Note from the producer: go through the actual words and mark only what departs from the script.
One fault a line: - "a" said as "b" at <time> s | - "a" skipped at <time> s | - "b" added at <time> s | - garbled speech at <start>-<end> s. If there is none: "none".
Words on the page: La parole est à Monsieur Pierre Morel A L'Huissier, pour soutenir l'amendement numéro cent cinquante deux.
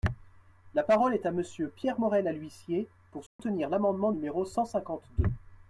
none